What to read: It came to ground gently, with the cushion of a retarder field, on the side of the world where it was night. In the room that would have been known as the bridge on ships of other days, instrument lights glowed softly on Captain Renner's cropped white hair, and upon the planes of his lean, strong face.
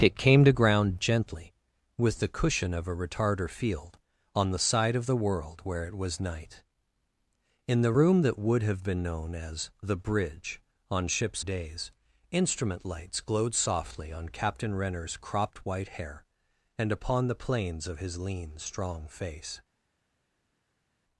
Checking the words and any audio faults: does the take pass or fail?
fail